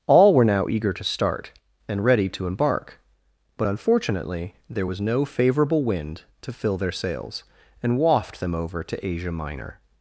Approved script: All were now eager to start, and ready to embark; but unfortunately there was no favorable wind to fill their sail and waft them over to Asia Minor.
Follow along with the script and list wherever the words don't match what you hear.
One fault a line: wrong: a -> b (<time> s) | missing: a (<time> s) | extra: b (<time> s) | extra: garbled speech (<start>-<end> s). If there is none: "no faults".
wrong: sail -> sails (6.9 s)